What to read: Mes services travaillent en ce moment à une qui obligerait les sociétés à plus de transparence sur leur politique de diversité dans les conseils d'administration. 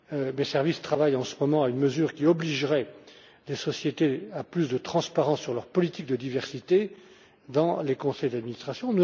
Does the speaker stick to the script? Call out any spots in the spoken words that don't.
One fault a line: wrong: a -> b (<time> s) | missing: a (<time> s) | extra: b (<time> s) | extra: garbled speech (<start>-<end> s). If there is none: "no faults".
extra: mesure (1.8 s)